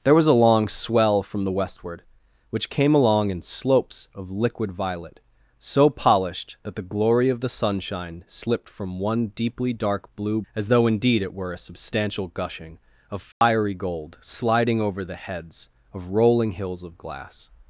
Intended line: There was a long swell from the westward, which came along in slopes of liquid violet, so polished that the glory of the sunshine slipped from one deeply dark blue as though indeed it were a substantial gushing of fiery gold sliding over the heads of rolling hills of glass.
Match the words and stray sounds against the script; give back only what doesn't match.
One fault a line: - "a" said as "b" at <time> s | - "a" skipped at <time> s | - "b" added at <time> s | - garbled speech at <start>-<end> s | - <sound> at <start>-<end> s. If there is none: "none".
- dropout at 13.3-13.4 s